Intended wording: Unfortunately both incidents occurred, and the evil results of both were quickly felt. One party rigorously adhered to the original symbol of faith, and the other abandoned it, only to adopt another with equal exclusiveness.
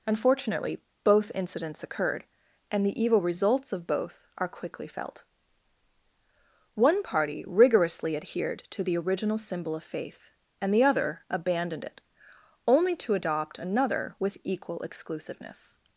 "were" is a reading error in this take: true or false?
true